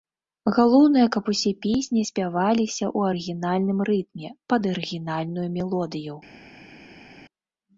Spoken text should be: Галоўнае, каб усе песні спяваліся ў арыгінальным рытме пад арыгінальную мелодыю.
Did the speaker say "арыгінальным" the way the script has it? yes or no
yes